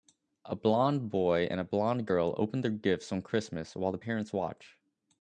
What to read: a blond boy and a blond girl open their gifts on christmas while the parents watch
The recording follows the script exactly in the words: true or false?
true